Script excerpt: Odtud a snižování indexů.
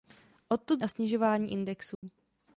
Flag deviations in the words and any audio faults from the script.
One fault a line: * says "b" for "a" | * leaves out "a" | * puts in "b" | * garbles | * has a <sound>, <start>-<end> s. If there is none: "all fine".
* has a dropout, 1.9-2.0 s